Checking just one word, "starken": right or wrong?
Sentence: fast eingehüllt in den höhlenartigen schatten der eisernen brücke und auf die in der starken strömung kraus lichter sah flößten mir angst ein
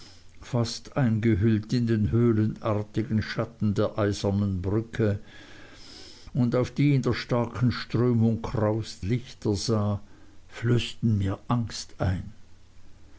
right